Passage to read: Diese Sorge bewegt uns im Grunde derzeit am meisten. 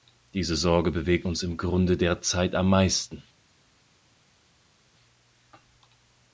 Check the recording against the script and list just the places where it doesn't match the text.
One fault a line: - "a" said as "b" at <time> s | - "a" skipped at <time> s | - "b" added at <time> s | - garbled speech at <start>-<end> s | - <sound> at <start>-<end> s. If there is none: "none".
none